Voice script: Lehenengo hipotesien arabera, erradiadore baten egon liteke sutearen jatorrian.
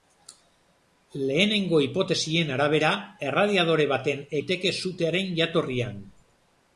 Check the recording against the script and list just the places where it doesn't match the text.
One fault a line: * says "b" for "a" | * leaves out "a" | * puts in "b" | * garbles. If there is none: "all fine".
* leaves out "egon"